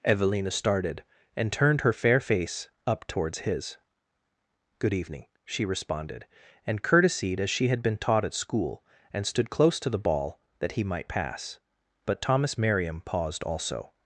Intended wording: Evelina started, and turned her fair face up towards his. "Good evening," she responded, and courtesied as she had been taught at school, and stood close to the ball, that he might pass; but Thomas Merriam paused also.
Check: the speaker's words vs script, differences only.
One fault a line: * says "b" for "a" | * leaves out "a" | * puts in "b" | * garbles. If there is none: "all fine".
all fine